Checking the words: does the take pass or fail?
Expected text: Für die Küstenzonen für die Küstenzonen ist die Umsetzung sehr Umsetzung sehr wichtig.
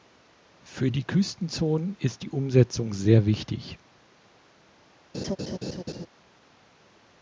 fail